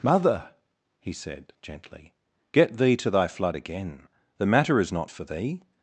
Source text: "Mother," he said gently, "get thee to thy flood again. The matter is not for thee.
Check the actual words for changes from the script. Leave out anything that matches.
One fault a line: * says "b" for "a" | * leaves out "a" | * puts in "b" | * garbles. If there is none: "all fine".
all fine